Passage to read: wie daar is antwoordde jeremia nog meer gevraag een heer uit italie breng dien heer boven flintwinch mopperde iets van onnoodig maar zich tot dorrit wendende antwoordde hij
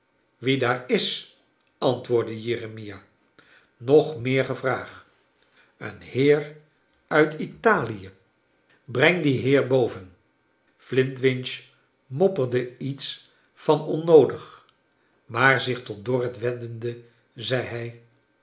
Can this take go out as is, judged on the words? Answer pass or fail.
fail